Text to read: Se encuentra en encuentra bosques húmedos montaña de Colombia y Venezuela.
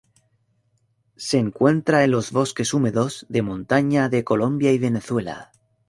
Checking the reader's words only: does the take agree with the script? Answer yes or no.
no